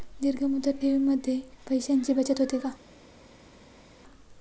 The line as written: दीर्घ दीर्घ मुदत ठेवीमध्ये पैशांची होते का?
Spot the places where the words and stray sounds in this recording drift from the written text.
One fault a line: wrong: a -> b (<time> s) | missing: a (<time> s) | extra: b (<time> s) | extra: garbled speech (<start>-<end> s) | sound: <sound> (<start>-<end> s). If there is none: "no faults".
missing: दीर्घ (0.4 s)
extra: बचत (2.1 s)